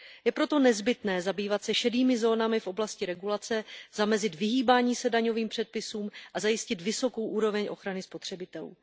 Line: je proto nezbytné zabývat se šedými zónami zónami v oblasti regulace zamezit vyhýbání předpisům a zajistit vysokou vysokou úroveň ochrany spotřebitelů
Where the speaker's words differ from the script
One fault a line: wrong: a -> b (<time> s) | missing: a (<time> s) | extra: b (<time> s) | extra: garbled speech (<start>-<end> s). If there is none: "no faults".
missing: zónami (2.6 s)
extra: se daňovým (5.0 s)
missing: vysokou (7.3 s)